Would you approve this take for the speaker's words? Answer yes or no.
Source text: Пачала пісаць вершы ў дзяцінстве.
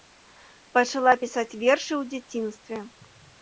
yes